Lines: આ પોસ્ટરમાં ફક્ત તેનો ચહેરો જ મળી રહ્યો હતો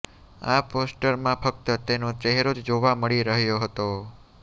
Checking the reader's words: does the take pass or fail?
fail